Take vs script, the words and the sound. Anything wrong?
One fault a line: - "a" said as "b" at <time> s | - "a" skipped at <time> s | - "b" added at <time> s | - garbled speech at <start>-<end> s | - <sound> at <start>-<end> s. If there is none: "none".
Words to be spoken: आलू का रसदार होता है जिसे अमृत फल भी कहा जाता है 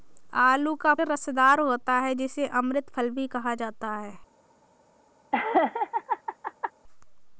- laugh at 5.3-6.7 s